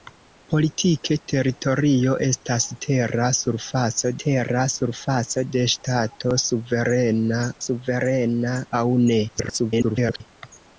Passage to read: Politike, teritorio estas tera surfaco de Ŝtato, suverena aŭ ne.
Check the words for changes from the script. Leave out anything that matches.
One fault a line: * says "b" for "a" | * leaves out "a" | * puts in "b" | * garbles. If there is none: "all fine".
* puts in "tera surfaco"
* puts in "suverena"
* garbles